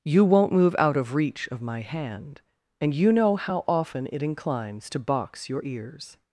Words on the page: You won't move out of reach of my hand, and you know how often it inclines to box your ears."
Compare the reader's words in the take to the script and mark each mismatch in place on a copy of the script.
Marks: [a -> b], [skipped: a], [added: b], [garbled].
You won't move out of reach of my hand, and you know how often it inclines to box your ears."